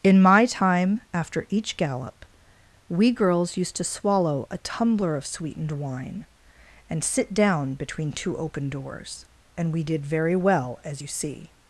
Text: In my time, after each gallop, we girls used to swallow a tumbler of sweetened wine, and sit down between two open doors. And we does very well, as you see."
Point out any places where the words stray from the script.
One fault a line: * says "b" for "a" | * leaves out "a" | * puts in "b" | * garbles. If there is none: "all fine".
* says "did" for "does"